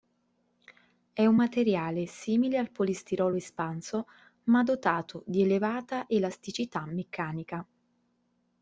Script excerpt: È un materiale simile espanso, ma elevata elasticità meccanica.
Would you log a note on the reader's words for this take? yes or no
yes